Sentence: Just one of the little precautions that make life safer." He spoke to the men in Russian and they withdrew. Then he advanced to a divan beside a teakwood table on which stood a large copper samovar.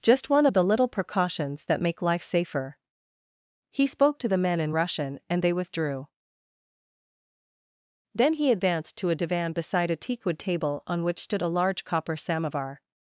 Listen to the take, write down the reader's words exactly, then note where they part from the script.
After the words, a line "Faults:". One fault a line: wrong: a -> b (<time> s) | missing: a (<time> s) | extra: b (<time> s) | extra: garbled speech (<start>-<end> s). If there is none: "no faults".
Just one of the little precautions that make life safer." He spoke to the men in Russian and they withdrew. Then he advanced to a divan beside a teakwood table on which stood a large copper samovar.
Faults:
no faults